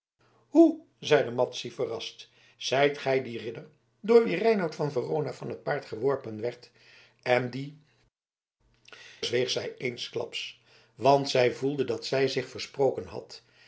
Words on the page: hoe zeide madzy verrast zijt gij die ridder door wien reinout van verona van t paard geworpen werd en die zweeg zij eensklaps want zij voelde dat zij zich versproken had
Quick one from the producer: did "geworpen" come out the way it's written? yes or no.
yes